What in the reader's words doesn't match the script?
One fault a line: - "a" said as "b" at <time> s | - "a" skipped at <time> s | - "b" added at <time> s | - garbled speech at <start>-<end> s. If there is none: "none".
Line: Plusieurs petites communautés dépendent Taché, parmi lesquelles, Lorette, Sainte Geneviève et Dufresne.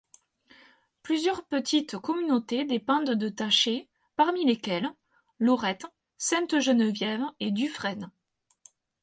- "de" added at 3.1 s